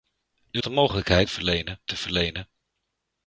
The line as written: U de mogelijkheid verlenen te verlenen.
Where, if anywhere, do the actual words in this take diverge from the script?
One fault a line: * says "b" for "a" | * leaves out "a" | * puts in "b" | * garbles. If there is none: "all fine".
all fine